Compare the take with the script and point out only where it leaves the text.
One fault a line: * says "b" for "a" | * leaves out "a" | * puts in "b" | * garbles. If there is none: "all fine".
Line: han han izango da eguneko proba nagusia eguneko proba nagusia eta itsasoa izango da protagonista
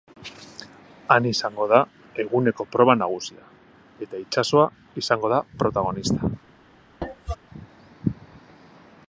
* leaves out "han"
* leaves out "eguneko proba nagusia"